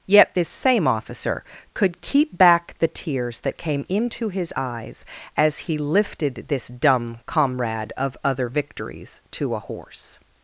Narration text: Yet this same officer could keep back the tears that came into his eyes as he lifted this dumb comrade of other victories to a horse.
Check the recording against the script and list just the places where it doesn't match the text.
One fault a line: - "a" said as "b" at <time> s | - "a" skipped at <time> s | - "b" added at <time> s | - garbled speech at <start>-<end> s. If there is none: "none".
none